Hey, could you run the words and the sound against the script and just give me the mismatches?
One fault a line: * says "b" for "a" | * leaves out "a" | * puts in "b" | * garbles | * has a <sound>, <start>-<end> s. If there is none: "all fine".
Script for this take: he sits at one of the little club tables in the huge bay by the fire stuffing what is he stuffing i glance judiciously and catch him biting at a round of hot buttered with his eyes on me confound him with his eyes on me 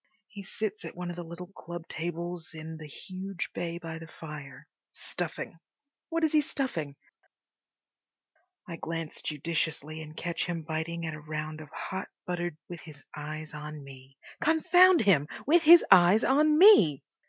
all fine